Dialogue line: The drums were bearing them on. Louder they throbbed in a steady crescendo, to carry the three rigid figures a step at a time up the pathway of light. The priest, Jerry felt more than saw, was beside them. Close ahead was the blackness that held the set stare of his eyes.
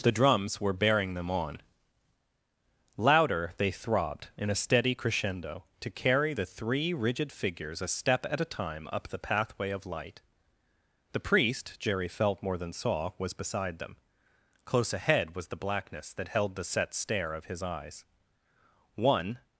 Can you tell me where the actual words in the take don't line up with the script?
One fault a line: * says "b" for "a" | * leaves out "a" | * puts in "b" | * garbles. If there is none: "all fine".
* puts in "One"